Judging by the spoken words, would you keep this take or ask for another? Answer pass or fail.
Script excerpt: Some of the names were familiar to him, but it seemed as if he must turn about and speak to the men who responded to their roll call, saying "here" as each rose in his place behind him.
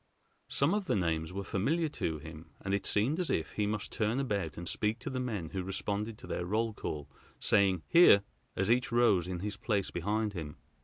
fail